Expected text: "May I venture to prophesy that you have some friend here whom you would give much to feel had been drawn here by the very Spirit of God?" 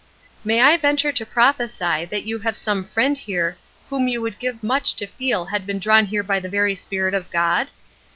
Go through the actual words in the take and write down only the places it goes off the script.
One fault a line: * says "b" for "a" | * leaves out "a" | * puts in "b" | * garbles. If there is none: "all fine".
all fine